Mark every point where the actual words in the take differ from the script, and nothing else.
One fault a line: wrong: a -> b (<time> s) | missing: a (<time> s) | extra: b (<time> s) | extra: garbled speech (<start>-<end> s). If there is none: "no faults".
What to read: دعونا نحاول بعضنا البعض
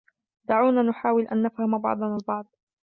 extra: أن نفهم (1.3 s)